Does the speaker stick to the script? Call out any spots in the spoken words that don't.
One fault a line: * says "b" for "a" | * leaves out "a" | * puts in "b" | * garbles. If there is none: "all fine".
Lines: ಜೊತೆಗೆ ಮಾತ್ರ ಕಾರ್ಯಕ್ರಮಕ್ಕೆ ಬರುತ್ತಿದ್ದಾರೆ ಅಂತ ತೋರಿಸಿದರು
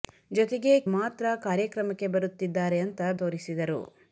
all fine